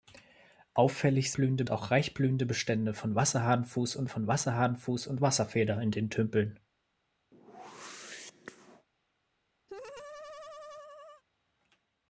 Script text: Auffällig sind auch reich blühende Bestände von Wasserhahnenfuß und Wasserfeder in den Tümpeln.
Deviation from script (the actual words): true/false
true